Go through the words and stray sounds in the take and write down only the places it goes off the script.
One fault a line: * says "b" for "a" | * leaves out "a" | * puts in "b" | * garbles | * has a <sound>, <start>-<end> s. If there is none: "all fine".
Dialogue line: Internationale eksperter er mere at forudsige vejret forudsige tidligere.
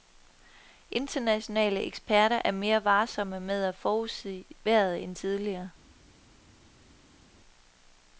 * puts in "varsomme med"
* says "end" for "forudsige"